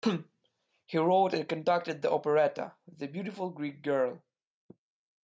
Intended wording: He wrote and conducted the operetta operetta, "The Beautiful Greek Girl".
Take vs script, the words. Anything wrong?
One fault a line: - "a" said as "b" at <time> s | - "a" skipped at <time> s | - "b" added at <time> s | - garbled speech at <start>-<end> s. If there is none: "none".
- "operetta" skipped at 2.8 s